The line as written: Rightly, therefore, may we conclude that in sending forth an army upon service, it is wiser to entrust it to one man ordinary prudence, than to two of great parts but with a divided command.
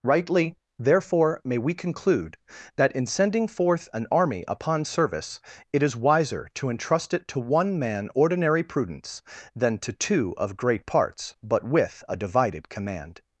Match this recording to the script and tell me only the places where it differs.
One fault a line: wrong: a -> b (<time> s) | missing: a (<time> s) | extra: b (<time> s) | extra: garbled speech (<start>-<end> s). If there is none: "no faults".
no faults